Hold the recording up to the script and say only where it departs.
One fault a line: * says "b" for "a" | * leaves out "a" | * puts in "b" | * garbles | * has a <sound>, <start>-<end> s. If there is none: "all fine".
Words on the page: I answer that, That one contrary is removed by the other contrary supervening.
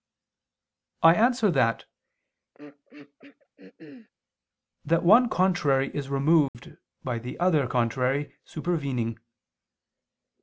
* has a throat clearing, 2.5-4.1 s
* has a dropout, 6.5-6.5 s